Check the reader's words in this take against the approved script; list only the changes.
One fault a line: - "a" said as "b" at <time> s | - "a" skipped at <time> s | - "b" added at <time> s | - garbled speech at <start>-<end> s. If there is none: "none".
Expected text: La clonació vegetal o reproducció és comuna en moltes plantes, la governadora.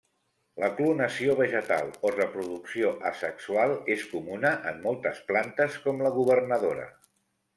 - "asexual" added at 3.1 s
- "com" added at 5.9 s